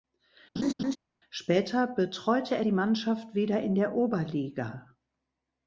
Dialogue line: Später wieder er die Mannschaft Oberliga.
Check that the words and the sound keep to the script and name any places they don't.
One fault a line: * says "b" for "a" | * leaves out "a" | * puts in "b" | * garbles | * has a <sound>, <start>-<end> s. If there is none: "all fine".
* has a laugh, 0.6-1.0 s
* says "betreute" for "wieder"
* puts in "wieder in der"